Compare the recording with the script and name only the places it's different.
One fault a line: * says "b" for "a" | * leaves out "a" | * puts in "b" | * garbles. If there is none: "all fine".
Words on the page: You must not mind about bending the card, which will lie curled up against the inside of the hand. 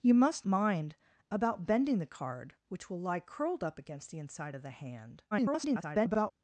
* leaves out "not"
* garbles